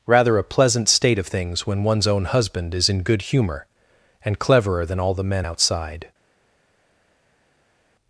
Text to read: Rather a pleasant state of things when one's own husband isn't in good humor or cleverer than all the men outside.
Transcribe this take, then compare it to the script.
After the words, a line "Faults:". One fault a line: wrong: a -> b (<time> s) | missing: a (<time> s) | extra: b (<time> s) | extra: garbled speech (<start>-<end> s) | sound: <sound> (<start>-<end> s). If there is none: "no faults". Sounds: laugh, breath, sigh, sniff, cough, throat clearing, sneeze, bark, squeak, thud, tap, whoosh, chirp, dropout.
Rather a pleasant state of things when one's own husband is in good humor and cleverer than all the men outside.
Faults:
wrong: isn't -> is (2.7 s)
wrong: or -> and (4.2 s)